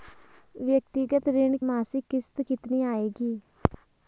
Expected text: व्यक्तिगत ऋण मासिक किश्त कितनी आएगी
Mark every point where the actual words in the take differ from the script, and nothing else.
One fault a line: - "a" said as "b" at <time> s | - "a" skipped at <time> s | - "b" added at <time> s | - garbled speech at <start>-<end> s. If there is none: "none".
none